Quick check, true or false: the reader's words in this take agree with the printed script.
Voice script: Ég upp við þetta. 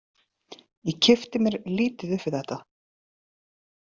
false